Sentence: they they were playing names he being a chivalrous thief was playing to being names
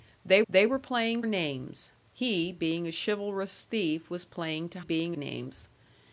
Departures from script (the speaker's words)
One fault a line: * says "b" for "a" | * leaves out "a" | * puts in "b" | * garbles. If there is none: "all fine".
all fine